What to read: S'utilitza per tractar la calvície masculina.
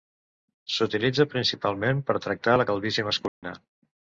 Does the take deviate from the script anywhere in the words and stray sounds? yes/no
yes